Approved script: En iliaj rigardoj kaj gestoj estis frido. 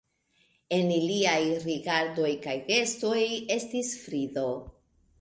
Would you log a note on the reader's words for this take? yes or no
no